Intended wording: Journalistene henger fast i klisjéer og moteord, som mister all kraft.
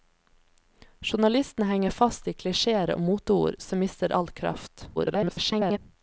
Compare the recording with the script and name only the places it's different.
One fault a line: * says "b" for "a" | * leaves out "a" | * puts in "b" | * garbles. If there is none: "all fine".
* garbles